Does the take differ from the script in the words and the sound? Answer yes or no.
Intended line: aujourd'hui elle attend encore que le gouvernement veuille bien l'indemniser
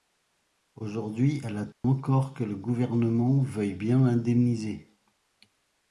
yes